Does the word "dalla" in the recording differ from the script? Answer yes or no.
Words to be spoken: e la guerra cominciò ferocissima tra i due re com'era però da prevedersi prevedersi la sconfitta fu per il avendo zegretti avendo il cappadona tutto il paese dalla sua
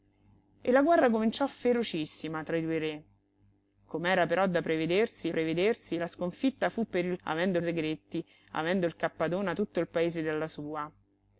no